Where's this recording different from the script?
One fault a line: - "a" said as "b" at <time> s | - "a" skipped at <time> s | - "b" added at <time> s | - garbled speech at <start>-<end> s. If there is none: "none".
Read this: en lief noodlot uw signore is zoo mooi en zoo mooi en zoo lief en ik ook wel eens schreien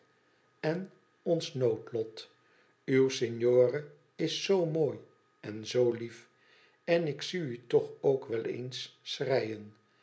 - "lief" said as "ons" at 1.3 s
- "mooi" said as "lief" at 5.9 s
- "zoo lief en ik" said as "ik zie u toch" at 7.1 s